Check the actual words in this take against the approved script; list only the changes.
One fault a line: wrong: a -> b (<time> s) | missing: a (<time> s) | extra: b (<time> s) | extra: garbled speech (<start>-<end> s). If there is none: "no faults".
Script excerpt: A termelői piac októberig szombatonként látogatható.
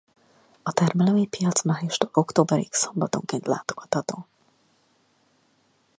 extra: májustól (1.6 s)